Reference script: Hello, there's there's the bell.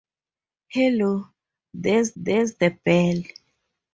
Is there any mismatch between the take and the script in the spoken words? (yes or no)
no